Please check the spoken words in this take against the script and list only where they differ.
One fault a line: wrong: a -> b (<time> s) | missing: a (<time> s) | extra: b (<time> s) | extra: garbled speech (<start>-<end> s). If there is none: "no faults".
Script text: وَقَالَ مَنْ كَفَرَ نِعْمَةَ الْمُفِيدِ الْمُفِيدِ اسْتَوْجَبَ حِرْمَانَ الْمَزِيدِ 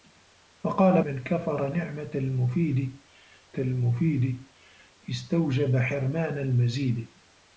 no faults